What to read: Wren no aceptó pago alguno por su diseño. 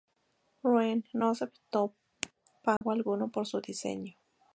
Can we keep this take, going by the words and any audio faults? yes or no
no